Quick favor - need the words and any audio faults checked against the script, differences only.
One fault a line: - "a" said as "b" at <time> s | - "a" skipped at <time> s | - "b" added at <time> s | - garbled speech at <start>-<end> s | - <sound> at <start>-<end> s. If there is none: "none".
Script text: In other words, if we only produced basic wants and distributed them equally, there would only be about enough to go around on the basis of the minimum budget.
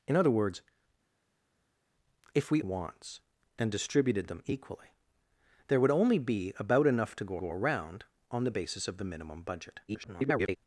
- "only produced basic" skipped at 2.6 s
- "go" added at 7.4 s
- garbled speech at 9.9-10.6 s